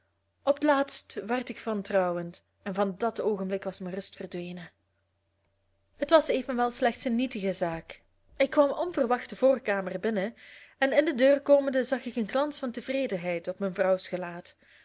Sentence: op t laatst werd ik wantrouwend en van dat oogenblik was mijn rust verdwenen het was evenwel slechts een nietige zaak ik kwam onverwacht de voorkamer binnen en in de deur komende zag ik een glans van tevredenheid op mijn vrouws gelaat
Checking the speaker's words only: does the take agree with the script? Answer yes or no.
yes